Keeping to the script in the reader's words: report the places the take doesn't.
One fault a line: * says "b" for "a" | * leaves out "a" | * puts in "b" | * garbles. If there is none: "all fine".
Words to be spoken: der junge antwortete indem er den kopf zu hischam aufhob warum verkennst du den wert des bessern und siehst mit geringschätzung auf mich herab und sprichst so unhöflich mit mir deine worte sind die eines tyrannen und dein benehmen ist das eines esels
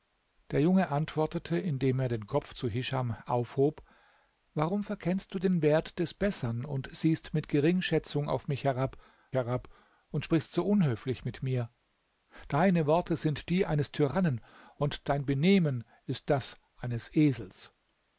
* puts in "herab"